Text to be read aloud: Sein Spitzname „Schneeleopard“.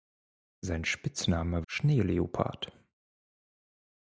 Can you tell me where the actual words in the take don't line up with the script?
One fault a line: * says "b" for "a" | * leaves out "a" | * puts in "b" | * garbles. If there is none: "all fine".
all fine